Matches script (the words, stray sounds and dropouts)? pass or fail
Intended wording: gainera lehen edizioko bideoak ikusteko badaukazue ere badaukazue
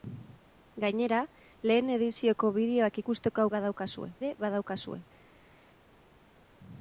pass